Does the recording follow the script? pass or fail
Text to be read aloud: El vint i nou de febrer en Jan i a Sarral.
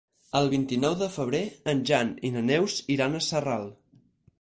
fail